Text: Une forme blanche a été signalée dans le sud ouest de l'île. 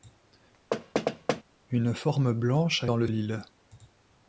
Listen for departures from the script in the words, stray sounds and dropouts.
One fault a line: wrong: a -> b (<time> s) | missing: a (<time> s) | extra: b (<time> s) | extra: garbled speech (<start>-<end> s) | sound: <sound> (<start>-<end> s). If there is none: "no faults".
sound: thud (0.7-1.4 s)
missing: été signalée (2.9 s)
missing: sud ouest de (3.1 s)